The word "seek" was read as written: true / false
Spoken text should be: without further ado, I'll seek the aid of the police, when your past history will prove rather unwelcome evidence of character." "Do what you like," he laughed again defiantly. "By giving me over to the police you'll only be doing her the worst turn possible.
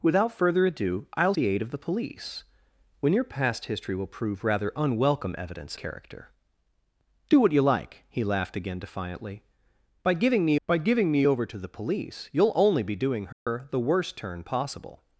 false